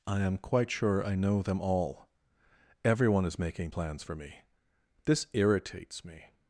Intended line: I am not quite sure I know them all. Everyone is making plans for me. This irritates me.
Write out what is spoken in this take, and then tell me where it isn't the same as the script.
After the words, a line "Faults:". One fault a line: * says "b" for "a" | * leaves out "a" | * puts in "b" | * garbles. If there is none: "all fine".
I am quite sure I know them all. Everyone is making plans for me. This irritates me.
Faults:
* leaves out "not"